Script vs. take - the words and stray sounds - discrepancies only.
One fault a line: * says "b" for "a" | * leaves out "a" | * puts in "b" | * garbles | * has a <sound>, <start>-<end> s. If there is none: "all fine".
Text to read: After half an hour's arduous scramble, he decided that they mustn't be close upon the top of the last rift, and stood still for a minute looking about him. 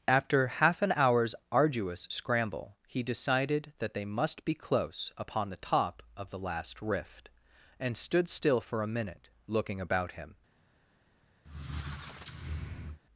* says "must" for "mustn't"
* has a squeak, 11.4-13.0 s